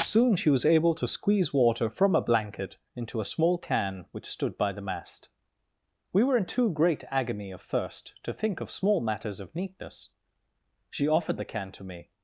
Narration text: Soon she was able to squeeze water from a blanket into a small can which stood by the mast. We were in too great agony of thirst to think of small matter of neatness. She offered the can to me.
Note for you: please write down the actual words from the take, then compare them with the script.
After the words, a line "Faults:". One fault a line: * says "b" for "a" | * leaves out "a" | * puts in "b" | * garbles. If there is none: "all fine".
Soon she was able to squeeze water from a blanket into a small can which stood by the mast. We were in too great agony of thirst to think of small matters of neatness. She offered the can to me.
Faults:
* says "matters" for "matter"